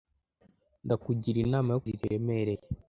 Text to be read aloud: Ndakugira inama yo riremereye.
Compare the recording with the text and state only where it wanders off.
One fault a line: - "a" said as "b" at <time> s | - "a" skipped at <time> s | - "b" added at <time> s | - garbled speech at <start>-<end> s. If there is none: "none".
none